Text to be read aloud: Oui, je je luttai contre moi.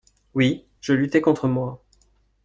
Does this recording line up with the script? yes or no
no